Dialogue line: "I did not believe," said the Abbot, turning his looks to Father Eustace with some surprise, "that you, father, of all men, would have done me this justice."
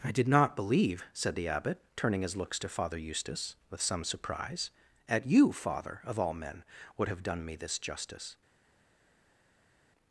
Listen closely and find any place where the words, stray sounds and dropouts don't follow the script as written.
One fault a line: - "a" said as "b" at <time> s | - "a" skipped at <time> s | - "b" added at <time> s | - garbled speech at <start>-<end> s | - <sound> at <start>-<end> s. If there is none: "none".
- "that" said as "at" at 5.1 s